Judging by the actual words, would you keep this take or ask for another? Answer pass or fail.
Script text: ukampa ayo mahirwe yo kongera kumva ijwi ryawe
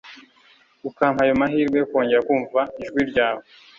pass